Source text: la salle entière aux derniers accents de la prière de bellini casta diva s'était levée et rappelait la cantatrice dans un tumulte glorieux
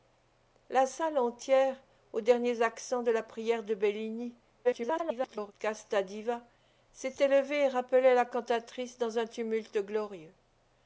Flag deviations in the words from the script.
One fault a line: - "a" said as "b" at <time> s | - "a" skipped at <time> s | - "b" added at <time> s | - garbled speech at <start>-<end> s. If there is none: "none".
- garbled speech at 4.6-5.5 s